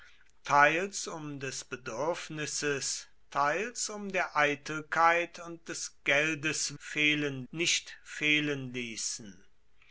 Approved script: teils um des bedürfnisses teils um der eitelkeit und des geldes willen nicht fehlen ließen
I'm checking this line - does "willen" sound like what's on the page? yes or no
no